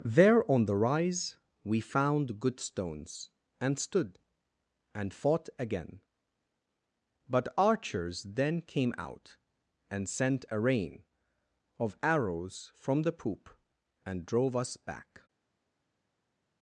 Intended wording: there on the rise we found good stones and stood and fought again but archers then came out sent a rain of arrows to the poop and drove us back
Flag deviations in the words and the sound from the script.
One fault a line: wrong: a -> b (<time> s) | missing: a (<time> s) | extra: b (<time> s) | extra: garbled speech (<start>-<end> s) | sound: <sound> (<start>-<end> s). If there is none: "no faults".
extra: and (9.9 s)
wrong: to -> from (12.7 s)